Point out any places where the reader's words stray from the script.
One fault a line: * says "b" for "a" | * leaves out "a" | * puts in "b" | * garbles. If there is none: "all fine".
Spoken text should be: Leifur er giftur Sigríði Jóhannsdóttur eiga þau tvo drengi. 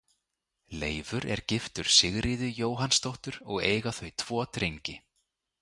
* puts in "og"